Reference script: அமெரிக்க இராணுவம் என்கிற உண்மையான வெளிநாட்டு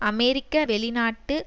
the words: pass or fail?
fail